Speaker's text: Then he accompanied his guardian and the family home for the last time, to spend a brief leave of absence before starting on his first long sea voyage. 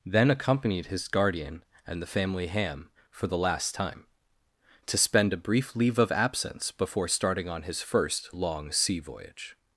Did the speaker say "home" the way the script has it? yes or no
no